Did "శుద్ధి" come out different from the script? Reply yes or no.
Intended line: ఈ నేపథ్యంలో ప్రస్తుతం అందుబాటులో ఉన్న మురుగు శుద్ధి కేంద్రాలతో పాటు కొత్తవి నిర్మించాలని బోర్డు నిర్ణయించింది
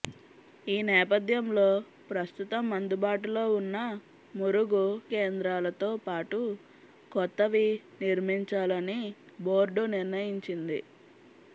yes